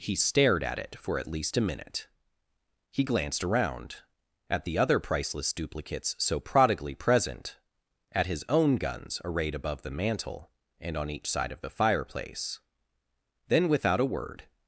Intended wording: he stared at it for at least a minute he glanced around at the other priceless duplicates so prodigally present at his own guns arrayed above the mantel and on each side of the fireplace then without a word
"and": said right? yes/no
yes